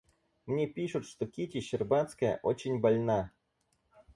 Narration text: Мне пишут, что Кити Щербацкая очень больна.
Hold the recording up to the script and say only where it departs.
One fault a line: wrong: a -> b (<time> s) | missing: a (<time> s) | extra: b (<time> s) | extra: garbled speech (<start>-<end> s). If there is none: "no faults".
no faults